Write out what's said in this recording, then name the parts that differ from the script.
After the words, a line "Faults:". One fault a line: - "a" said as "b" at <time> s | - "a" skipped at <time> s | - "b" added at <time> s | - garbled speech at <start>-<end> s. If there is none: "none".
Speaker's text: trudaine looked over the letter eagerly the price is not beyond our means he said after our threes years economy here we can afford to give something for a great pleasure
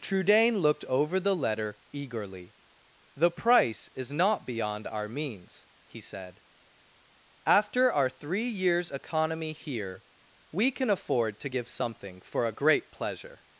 trudaine looked over the letter eagerly the price is not beyond our means he said after our three years economy here we can afford to give something for a great pleasure
Faults:
- "threes" said as "three" at 8.1 s